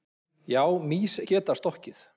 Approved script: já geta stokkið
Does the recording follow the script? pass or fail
fail